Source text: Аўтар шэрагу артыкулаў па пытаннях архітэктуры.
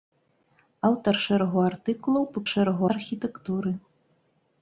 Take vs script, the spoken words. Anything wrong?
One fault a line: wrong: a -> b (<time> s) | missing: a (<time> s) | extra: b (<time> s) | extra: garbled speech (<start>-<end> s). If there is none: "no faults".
wrong: пытаннях -> шэрагу (2.5 s)